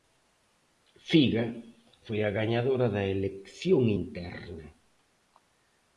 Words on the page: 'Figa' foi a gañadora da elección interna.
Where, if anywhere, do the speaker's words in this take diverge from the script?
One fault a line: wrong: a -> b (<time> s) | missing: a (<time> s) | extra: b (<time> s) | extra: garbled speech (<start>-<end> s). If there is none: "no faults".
no faults